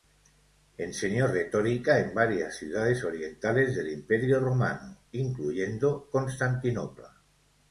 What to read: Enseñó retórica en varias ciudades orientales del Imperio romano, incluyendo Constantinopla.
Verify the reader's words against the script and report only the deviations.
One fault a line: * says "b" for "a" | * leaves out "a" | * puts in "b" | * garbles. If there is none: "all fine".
all fine